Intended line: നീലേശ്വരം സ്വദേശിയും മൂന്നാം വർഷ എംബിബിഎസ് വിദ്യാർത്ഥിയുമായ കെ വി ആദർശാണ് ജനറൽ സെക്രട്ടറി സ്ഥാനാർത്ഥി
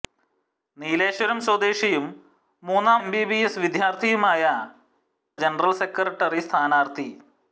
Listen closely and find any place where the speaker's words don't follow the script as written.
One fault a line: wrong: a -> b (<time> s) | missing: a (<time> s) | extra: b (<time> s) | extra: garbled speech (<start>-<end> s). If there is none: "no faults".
missing: വർഷ (3.0 s)
missing: കെ വി ആദർശാണ് (4.4 s)